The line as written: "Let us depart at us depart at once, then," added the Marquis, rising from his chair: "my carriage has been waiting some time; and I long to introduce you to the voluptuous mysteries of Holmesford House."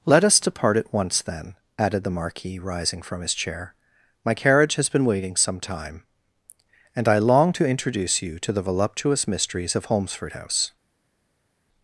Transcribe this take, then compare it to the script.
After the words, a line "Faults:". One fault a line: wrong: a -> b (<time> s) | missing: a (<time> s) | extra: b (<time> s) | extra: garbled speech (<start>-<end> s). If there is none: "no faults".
"Let us depart at once, then," added the Marquis, rising from his chair: "my carriage has been waiting some time; and I long to introduce you to the voluptuous mysteries of Holmesford House."
Faults:
missing: us depart at (0.9 s)